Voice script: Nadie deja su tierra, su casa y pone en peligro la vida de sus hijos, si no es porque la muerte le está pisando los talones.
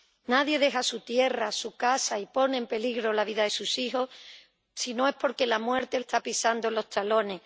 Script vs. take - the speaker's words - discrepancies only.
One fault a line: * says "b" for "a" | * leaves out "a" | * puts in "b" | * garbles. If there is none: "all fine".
* leaves out "le"